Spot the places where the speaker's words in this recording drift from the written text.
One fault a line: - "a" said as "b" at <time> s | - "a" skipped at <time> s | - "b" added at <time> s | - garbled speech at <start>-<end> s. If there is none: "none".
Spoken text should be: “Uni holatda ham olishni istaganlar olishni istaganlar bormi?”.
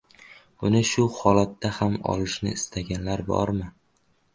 - "shu" added at 0.9 s
- "olishni istaganlar" skipped at 3.3 s